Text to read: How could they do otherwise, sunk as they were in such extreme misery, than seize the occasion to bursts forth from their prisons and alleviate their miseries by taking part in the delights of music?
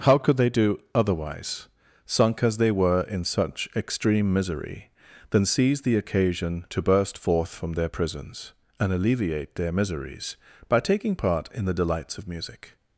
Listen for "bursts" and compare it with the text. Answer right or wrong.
wrong